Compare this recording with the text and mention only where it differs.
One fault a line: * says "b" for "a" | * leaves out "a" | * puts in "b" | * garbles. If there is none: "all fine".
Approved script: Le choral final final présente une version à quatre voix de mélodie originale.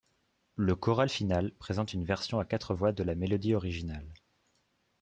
* leaves out "final"
* puts in "la"